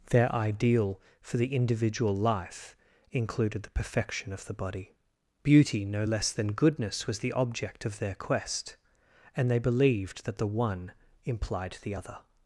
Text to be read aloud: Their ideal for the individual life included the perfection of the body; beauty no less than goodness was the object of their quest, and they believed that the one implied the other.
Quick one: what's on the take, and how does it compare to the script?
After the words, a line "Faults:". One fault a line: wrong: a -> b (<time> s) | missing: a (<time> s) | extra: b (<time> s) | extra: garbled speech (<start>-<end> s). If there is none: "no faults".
Their ideal for the individual life included the perfection of the body; beauty no less than goodness was the object of their quest, and they believed that the one implied the other.
Faults:
no faults